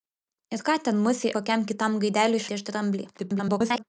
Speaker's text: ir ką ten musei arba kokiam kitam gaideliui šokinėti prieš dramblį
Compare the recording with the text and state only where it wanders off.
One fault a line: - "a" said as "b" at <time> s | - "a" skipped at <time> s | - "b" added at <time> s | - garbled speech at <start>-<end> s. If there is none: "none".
- "arba" skipped at 1.3 s
- "šokinėti" skipped at 2.5 s
- garbled speech at 3.2-3.8 s